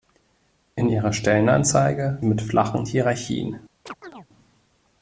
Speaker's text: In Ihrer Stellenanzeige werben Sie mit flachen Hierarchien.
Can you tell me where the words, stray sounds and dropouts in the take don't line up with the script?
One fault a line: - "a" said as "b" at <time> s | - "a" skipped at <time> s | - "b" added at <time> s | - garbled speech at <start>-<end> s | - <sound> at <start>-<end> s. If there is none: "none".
- "werben Sie" skipped at 2.2 s
- chirp at 3.9-4.3 s